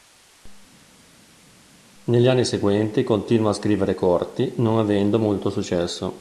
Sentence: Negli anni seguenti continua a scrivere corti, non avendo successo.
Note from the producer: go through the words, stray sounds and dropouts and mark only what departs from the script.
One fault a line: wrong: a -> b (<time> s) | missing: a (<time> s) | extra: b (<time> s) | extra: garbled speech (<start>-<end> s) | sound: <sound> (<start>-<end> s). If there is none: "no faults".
extra: molto (5.2 s)